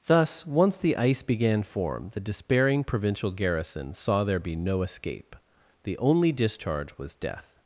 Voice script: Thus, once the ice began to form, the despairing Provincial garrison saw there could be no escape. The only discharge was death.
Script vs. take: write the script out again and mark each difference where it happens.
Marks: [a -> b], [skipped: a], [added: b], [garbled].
Thus, once the ice began [skipped: to] form, the despairing Provincial garrison saw there [skipped: could] be no escape. The only discharge was death.